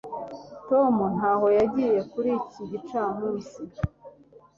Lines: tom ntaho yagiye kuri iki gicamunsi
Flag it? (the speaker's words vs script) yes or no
no